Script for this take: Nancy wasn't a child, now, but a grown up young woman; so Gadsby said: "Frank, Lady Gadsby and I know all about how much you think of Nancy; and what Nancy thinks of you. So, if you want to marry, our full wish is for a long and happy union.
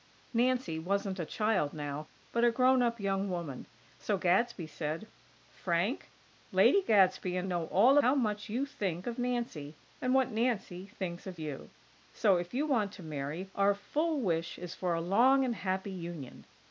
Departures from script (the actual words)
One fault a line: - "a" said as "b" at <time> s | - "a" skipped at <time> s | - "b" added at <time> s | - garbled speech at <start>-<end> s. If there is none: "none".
- "I" skipped at 7.5 s
- "about" skipped at 8.0 s